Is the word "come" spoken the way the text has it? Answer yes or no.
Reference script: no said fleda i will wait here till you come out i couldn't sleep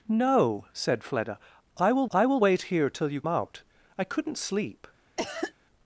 no